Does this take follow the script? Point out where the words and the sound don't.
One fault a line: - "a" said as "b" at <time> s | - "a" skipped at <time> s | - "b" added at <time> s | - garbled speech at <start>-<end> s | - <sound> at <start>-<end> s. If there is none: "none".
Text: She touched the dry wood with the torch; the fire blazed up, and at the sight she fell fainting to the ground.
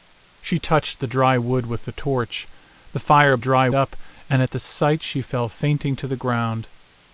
- "blazed" said as "dry" at 3.4 s